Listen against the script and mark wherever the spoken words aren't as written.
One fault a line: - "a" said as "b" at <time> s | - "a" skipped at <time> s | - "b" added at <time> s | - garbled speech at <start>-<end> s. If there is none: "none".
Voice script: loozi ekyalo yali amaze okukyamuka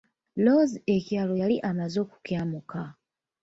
none